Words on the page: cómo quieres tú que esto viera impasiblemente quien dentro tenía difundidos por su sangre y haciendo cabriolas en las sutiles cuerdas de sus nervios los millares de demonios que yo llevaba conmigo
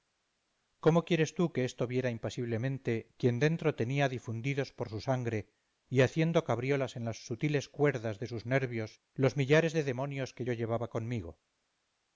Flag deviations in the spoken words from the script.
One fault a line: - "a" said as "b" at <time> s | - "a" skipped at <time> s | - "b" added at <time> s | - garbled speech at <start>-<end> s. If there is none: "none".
none